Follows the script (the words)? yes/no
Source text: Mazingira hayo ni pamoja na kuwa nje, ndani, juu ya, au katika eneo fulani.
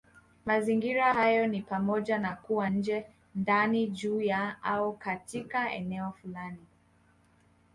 yes